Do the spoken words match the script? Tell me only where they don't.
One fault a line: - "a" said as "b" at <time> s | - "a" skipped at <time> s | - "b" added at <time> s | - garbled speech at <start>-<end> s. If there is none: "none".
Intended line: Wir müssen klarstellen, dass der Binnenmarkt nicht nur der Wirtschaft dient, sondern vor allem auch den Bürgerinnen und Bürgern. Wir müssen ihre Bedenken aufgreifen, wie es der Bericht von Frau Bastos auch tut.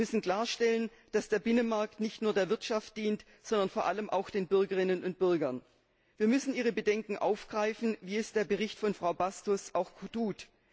none